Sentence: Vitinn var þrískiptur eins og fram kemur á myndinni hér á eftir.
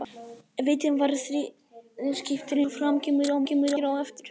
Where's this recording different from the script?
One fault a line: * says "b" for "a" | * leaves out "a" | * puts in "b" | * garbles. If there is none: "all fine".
* leaves out "eins"
* says "kemur" for "myndinni"